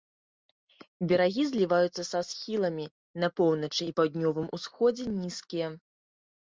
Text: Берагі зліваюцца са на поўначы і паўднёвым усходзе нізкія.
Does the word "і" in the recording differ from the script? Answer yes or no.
no